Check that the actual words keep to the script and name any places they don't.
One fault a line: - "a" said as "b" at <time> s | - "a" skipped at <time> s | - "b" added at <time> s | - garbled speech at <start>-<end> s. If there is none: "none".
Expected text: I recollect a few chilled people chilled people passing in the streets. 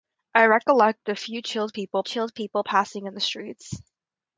none